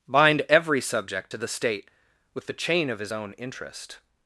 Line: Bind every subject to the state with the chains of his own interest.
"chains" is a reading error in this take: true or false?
true